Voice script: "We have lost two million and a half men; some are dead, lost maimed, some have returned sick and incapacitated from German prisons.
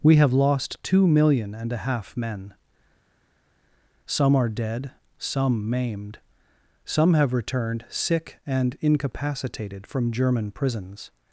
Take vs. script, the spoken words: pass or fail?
fail